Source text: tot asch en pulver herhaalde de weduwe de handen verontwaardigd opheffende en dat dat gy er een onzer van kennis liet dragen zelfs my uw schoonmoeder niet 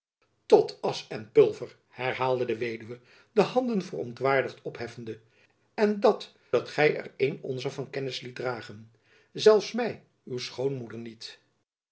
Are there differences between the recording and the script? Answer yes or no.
no